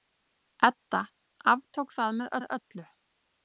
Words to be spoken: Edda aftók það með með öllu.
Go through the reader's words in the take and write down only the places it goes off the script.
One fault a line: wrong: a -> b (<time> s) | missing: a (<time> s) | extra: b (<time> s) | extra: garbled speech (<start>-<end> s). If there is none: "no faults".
no faults